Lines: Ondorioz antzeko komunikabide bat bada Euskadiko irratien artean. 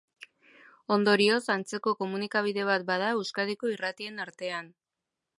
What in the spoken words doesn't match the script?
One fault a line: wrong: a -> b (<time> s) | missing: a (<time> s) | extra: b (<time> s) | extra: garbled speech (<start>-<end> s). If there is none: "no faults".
no faults